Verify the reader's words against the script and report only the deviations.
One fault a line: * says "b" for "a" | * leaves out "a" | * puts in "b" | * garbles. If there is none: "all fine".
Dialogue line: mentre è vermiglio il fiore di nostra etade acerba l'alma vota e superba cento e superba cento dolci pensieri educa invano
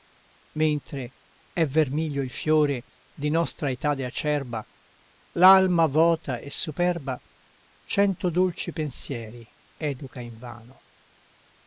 * leaves out "e superba cento"